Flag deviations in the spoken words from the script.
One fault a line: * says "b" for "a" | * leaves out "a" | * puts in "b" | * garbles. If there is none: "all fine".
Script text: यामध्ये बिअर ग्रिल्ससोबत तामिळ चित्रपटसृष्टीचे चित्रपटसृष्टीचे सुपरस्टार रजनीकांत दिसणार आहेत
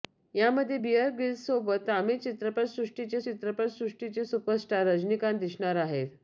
all fine